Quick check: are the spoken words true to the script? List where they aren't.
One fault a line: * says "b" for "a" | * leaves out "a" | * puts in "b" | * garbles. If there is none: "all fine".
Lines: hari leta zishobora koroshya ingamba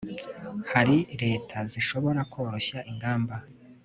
all fine